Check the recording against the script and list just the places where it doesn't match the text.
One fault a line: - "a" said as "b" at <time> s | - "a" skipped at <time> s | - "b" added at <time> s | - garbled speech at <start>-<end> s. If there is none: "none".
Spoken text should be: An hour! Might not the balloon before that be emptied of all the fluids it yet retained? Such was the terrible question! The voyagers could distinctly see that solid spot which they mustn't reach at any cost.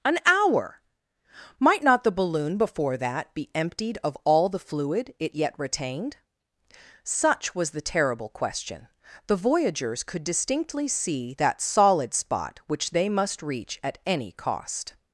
- "fluids" said as "fluid" at 4.6 s
- "mustn't" said as "must" at 13.1 s